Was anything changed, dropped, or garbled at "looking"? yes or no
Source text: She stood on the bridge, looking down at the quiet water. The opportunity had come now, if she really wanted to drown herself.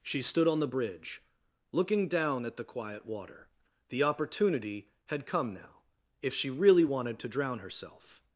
no